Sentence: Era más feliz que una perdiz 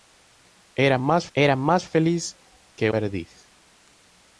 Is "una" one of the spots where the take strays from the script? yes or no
yes